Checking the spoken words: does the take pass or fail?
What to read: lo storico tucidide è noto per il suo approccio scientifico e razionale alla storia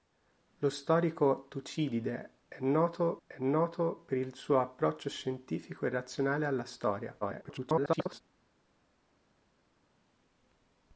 fail